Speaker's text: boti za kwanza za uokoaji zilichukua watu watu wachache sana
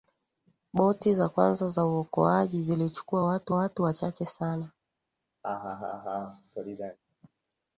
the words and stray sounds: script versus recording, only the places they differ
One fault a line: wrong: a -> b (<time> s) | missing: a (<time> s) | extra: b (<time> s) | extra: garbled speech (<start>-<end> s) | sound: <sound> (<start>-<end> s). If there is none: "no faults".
sound: laugh (5.4-7.0 s)